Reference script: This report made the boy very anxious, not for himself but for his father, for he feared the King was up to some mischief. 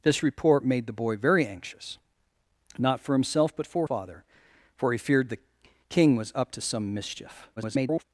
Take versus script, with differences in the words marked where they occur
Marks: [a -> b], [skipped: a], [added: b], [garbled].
This report made the boy very anxious, not for himself but for [skipped: his] father, for he feared the King was up to some mischief. [garbled]